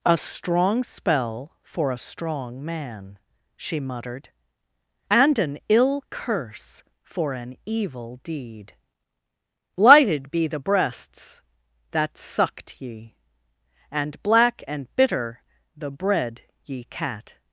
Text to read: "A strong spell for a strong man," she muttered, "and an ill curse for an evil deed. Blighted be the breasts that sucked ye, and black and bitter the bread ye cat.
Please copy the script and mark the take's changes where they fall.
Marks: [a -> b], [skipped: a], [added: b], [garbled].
"A strong spell for a strong man," she muttered, "and an ill curse for an evil deed. [Blighted -> Lighted] be the breasts that sucked ye, and black and bitter the bread ye cat.